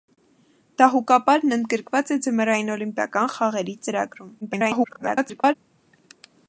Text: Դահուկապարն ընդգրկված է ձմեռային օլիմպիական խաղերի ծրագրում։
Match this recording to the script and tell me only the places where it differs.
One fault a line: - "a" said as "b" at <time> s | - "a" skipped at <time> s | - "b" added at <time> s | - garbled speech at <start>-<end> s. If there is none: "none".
- garbled speech at 4.4-5.6 s